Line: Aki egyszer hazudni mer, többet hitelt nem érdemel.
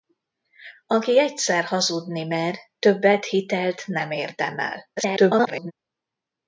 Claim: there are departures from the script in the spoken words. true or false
true